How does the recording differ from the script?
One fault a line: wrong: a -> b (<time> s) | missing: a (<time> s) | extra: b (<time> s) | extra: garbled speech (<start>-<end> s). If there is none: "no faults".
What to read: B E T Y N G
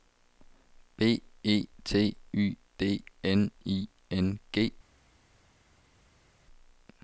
extra: D N I (2.8 s)